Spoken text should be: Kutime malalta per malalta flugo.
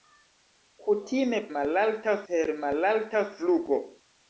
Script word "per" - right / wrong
right